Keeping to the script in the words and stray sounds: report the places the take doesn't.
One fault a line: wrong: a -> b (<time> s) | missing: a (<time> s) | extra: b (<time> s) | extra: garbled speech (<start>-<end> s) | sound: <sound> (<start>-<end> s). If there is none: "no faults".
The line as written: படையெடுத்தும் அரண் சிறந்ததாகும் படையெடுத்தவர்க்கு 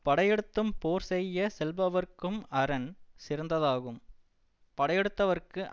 extra: போர் செய்ய செல்பவர்க்கும் (0.8 s)